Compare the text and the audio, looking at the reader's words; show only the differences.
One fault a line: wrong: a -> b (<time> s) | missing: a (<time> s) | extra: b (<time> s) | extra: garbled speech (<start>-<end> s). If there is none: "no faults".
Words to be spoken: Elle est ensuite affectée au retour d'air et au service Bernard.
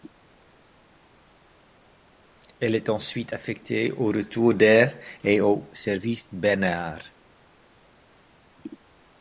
no faults